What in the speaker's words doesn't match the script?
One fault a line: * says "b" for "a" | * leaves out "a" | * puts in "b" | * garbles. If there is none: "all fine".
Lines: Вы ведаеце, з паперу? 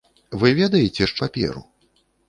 all fine